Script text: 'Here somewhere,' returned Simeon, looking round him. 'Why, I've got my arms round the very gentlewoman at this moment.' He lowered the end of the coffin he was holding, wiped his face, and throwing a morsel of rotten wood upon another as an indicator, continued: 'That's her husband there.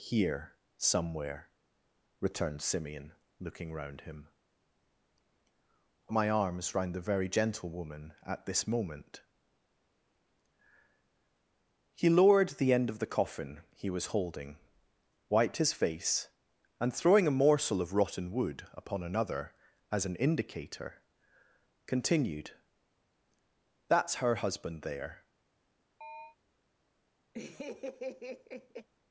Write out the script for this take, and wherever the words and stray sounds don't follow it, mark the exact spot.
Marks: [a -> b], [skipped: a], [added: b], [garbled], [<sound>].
'Here somewhere,' returned Simeon, looking round him. [skipped: 'Why, I've got] my arms round the very gentlewoman at this moment.' He lowered the end of the coffin he was holding, wiped his face, and throwing a morsel of rotten wood upon another as an indicator, continued: 'That's her husband there. [chirp] [laugh]